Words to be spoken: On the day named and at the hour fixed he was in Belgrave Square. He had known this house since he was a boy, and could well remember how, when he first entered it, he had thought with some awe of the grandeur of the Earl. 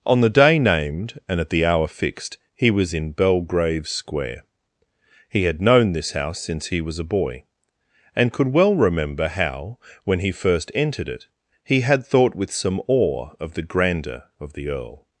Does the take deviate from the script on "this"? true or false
false